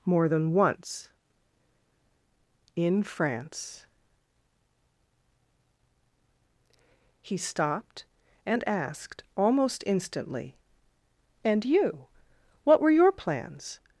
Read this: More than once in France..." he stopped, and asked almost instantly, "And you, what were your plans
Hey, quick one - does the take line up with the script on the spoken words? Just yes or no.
yes